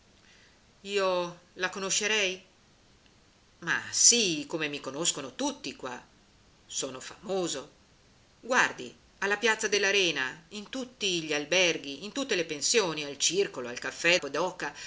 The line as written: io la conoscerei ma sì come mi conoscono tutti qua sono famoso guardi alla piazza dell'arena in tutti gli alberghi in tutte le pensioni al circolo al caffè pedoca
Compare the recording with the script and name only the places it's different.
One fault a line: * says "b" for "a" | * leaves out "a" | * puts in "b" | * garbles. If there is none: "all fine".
all fine